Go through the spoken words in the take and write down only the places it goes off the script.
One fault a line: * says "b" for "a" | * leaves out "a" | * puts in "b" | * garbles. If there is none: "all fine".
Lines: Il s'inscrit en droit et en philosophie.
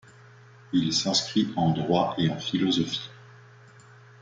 all fine